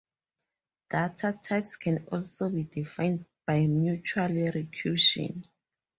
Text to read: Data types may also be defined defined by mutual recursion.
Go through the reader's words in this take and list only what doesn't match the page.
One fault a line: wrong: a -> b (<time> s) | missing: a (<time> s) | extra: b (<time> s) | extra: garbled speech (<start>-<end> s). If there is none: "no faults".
wrong: may -> can (1.7 s)
missing: defined (3.2 s)